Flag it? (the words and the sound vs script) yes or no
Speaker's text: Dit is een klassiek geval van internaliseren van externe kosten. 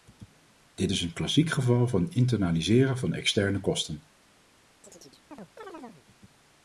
yes